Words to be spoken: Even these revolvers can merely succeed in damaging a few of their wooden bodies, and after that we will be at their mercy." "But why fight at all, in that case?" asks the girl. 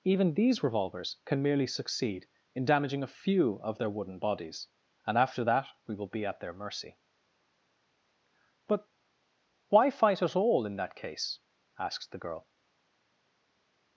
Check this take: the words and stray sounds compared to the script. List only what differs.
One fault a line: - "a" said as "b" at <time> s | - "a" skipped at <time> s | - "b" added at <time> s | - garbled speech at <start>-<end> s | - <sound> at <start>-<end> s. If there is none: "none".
none